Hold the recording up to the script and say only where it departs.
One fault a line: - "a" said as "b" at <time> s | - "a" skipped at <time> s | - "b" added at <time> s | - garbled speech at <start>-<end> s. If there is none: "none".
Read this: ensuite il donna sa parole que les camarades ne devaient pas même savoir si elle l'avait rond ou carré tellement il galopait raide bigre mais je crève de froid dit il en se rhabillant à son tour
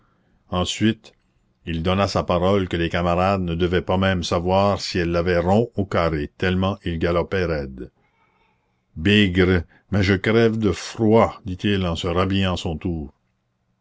none